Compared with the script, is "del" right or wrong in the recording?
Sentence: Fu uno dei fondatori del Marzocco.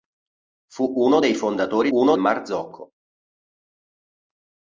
wrong